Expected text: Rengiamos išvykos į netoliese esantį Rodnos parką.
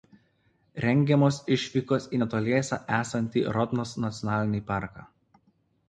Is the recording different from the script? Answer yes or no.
yes